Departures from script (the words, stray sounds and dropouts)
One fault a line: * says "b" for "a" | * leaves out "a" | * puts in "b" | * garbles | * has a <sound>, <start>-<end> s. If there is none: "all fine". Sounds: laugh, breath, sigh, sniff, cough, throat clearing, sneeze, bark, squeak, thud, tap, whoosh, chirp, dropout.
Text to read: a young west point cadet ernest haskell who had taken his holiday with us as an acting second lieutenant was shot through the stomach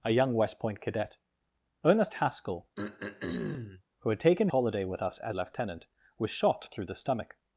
* has a throat clearing, 2.8-3.8 s
* leaves out "his"
* leaves out "an acting second"